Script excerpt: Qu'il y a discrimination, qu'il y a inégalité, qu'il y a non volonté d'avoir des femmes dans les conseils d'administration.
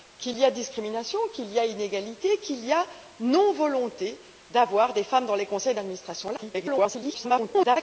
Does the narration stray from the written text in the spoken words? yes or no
yes